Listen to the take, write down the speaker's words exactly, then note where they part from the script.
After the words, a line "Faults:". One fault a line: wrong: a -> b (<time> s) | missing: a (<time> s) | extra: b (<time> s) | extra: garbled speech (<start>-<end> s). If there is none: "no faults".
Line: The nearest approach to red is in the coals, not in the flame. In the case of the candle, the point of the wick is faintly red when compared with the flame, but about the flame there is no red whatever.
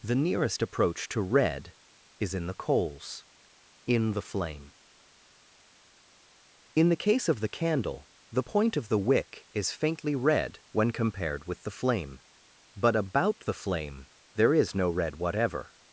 The nearest approach to red is in the coals, in the flame. In the case of the candle, the point of the wick is faintly red when compared with the flame, but about the flame there is no red whatever.
Faults:
missing: not (3.2 s)